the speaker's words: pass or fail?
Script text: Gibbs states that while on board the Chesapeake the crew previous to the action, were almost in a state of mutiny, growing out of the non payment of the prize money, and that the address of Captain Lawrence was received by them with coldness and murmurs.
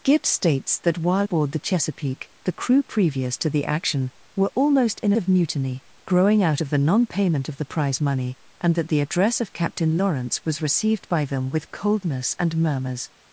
fail